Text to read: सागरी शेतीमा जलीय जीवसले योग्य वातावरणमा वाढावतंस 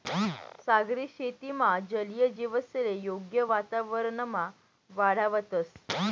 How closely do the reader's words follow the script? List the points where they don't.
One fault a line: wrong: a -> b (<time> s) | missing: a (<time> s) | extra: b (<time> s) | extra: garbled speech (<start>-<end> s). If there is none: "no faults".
no faults